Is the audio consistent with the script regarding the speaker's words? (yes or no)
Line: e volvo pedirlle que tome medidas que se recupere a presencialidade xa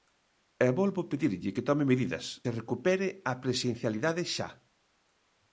no